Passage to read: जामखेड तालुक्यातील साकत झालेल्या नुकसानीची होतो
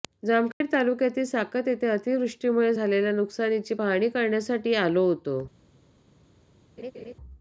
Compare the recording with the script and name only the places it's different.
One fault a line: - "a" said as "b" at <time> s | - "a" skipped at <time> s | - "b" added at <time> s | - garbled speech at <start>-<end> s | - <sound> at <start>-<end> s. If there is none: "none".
- dropout at 0.5-0.6 s
- "येथे अतिवृष्टीमुळे" added at 1.7 s
- "पाहणी करण्यासाठी आलो" added at 3.7 s
- laugh at 6.8-7.1 s